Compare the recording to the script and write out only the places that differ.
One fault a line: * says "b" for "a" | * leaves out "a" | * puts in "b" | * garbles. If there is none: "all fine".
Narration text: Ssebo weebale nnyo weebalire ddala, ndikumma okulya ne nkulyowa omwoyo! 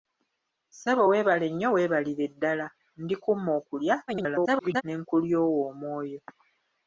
* garbles